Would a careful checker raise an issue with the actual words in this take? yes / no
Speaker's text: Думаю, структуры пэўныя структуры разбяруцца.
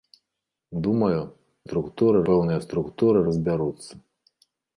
no